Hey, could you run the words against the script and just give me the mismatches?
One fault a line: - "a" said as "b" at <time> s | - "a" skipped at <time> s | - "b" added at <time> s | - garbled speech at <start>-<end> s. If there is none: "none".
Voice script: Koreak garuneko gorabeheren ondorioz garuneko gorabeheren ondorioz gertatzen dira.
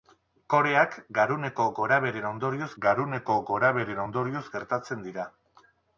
none